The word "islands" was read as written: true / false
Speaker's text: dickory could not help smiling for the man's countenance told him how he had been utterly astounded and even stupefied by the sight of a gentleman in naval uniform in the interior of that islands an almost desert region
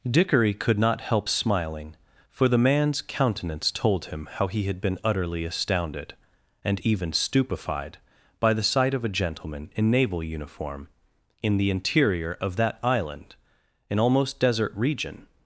false